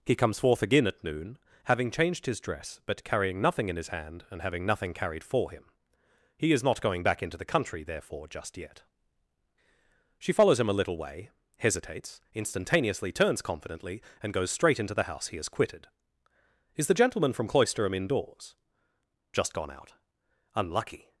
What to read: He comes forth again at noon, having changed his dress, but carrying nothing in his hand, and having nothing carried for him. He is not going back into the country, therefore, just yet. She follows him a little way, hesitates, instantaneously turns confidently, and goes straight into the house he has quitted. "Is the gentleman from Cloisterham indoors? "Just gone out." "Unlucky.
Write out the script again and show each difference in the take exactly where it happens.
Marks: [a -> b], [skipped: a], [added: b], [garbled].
He comes forth again at noon, having changed his dress, but carrying nothing in his hand, and having nothing carried for him. He is not going back into the country, therefore, just yet. She follows him a little way, hesitates, instantaneously turns confidently, and goes straight into the house he has quitted. "Is the gentleman from Cloisterham indoors? "Just gone out." "Unlucky.